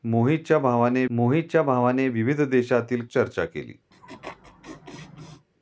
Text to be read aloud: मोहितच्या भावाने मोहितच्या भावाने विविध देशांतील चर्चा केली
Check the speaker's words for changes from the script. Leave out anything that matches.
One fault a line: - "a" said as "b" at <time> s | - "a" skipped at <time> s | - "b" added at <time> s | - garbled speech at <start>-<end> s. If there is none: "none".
none